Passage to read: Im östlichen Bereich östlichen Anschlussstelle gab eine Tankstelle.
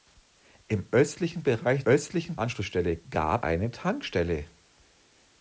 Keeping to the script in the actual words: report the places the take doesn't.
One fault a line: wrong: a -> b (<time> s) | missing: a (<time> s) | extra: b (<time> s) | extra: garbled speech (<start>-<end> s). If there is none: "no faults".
no faults